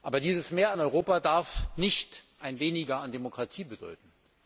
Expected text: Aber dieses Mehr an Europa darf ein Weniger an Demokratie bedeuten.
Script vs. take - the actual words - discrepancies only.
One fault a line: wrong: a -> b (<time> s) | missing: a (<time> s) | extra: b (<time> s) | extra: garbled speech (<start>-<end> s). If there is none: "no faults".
extra: nicht (1.8 s)